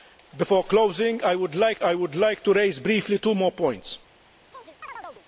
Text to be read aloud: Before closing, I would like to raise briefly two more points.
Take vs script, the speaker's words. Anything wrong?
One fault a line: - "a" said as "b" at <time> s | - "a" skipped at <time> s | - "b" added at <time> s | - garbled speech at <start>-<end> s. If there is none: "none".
- "I would like" added at 1.8 s